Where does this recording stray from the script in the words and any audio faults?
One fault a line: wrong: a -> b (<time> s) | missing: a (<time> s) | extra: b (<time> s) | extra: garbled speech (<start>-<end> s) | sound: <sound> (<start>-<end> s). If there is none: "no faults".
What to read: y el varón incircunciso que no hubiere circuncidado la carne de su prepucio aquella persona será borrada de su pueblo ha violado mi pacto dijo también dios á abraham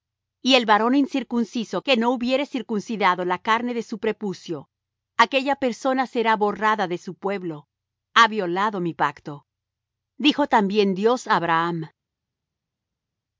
no faults